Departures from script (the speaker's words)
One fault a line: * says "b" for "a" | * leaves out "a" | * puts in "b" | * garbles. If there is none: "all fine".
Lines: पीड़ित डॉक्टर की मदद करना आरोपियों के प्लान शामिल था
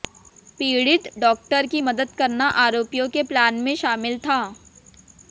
* puts in "में"